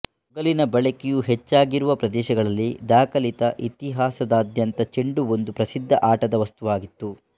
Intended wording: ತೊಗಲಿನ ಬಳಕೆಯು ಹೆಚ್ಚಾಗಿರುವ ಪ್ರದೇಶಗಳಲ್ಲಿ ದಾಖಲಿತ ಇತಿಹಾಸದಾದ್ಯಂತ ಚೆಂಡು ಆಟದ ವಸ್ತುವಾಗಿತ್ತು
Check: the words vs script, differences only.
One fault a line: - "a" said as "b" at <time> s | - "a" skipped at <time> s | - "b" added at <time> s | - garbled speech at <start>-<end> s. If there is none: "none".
- "ಒಂದು ಪ್ರಸಿದ್ಧ" added at 5.4 s